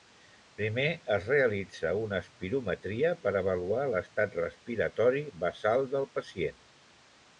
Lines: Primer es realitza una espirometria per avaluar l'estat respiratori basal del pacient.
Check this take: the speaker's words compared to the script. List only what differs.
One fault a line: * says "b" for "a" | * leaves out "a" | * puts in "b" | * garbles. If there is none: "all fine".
all fine